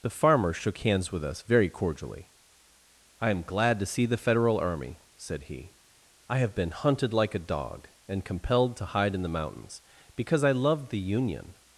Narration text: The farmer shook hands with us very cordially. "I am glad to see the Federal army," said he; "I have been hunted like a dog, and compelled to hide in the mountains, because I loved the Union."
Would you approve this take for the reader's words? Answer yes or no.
yes